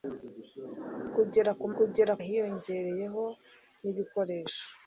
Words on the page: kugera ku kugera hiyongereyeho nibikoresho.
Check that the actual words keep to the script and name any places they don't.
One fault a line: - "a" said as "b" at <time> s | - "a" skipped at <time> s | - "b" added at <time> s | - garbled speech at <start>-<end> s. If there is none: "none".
none